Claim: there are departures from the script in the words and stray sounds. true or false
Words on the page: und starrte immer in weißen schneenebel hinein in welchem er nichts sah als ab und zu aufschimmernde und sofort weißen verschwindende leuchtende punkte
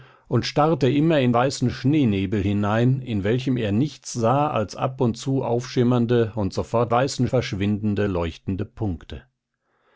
false